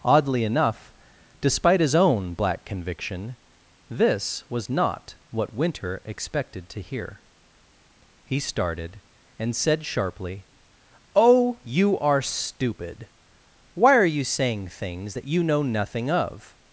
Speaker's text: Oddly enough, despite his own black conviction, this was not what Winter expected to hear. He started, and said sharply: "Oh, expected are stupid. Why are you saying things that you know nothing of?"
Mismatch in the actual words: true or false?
true